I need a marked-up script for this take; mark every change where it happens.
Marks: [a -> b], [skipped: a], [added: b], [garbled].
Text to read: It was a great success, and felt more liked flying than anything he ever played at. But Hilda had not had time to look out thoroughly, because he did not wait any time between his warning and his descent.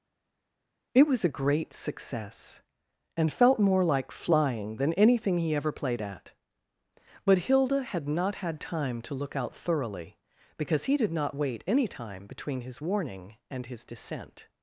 It was a great success, and felt more [liked -> like] flying than anything he ever played at. But Hilda had not had time to look out thoroughly, because he did not wait any time between his warning and his descent.